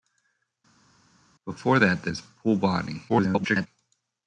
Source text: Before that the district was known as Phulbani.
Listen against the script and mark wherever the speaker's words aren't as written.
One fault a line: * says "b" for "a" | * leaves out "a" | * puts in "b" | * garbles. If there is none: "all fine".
* leaves out "district was known"
* garbles